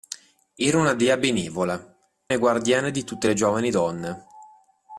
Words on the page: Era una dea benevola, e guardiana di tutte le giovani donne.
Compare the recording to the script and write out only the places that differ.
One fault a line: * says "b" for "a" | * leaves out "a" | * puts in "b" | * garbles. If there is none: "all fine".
all fine